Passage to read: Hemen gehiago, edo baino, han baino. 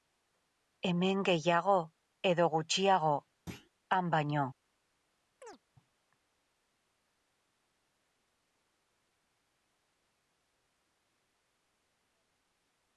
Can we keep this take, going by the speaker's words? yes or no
no